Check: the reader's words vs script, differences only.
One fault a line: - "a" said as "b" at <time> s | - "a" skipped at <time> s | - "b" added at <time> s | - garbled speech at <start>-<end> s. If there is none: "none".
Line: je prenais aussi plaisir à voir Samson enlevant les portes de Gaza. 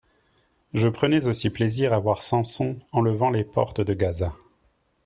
none